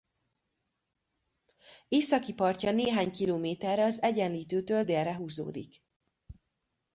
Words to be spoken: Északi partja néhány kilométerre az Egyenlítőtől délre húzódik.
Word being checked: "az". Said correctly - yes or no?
yes